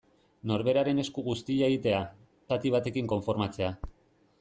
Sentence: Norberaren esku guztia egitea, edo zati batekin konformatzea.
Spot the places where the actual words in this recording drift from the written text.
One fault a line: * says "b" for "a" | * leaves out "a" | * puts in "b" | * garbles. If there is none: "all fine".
* leaves out "edo"